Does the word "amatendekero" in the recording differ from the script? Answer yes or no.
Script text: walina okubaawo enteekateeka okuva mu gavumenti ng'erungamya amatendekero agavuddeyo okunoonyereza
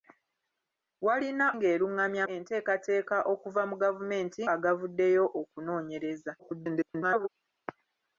yes